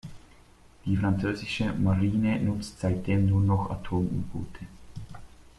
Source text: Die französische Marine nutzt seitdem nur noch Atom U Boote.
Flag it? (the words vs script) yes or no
no